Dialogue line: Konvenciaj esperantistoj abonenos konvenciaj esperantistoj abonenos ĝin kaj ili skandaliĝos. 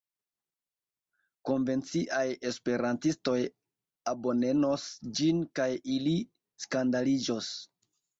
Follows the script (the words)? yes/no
no